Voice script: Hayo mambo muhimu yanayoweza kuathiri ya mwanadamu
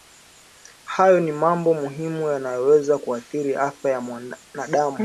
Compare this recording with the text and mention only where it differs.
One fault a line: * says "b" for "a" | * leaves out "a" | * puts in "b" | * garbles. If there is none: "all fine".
* puts in "ni"
* puts in "afya"